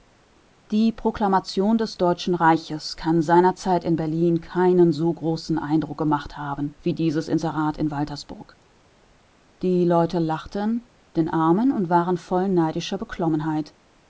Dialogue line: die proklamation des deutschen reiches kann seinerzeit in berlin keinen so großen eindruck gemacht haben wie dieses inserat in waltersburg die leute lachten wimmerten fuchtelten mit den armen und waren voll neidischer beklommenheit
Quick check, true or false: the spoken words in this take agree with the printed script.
false